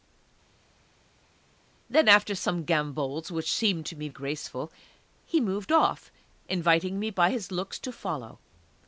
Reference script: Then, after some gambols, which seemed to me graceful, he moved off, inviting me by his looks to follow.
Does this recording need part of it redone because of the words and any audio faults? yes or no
no